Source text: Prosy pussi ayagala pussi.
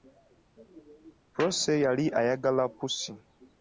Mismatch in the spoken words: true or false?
true